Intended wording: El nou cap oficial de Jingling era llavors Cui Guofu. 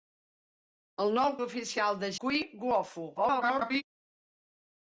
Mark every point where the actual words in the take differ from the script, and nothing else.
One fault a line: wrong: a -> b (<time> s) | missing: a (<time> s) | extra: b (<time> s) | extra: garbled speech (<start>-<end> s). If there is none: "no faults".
missing: cap (1.4 s)
missing: Jingling era llavors (2.1 s)
extra: garbled speech (3.2-3.8 s)